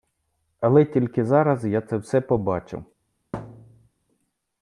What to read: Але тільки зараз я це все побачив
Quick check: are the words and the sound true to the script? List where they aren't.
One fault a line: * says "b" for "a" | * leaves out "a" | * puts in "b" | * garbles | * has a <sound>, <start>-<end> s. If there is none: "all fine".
* has a thud, 3.3-3.9 s